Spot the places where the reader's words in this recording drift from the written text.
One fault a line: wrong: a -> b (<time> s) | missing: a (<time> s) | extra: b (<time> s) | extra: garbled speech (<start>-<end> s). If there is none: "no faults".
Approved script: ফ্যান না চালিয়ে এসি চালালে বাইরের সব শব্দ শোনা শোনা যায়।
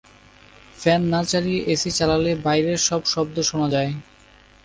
missing: শোনা (3.7 s)